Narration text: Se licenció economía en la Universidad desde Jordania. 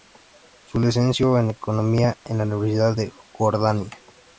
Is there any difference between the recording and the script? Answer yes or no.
yes